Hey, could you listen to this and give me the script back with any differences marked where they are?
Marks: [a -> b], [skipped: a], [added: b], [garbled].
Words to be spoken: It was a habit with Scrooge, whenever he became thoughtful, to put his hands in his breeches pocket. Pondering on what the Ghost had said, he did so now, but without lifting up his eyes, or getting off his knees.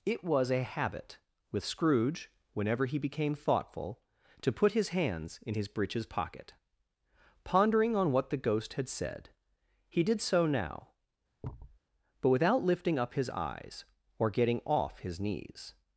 It was a habit with Scrooge, whenever he became thoughtful, to put his hands in his breeches pocket. Pondering on what the Ghost had said, he did so now, but without lifting up his eyes, or getting off his knees.